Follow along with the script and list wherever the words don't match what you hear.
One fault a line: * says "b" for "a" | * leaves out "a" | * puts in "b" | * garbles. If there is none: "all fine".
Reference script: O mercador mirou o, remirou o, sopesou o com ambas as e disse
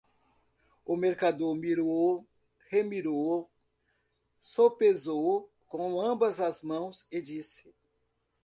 * puts in "mãos"